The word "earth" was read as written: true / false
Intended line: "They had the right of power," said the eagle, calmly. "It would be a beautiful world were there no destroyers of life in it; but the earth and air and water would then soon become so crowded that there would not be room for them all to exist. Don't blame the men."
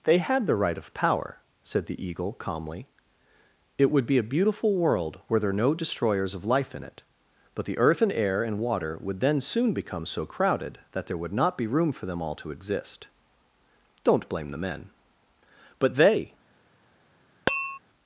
true